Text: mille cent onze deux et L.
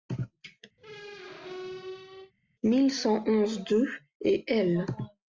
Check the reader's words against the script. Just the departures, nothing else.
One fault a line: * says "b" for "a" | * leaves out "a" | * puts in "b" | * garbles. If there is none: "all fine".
all fine